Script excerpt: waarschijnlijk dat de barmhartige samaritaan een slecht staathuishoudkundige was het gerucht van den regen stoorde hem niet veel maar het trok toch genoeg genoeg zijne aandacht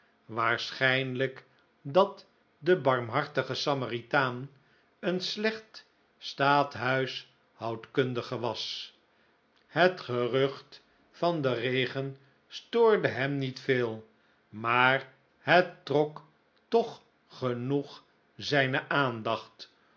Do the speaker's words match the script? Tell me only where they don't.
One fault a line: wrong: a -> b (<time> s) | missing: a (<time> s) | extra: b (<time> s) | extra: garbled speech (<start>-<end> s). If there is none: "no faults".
missing: genoeg (18.0 s)